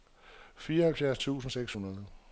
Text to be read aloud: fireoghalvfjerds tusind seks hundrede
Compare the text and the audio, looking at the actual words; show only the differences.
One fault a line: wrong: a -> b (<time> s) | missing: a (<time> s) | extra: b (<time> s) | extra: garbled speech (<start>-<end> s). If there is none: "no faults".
no faults